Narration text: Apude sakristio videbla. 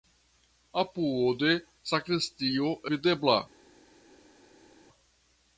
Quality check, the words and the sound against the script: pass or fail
pass